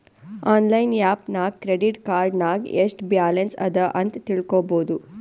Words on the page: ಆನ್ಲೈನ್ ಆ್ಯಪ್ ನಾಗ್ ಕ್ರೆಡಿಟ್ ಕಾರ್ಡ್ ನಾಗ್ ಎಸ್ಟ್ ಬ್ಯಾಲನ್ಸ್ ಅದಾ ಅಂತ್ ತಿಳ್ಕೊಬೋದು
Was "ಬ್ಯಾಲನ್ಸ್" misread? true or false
false